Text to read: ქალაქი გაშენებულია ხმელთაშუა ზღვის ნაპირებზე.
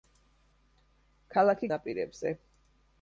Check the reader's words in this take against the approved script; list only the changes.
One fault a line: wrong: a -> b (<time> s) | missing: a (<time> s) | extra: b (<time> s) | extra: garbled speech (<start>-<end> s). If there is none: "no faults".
missing: გაშენებულია ხმელთაშუა ზღვის (1.7 s)